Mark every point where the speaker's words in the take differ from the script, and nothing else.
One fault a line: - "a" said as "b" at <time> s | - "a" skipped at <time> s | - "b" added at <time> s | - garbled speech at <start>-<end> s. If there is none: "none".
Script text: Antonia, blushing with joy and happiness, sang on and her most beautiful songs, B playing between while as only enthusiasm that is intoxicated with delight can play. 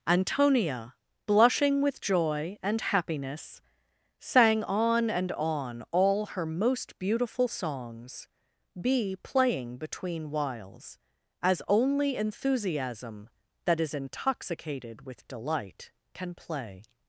- "on all" added at 5.3 s
- "while" said as "whiles" at 10.3 s